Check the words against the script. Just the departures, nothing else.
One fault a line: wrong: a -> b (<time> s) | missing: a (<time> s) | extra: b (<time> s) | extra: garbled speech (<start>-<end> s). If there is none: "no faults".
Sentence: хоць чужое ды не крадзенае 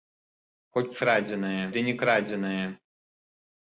wrong: чужое -> крадзенае (1.0 s)